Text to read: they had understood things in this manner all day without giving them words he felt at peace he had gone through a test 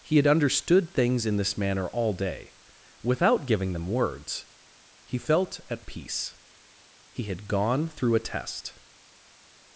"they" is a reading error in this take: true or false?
true